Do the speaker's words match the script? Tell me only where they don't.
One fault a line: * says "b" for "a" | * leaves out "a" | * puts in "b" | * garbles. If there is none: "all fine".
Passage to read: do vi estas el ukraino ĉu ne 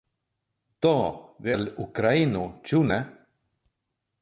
* leaves out "estas"